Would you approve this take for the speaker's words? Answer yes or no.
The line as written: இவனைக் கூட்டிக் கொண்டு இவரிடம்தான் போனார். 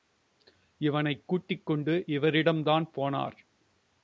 yes